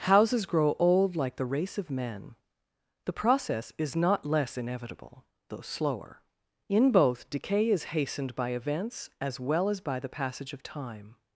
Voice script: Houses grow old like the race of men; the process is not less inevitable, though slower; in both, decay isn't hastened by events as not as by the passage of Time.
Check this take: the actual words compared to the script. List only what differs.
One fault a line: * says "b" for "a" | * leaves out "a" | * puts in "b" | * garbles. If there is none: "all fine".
* says "is" for "isn't"
* says "well" for "not"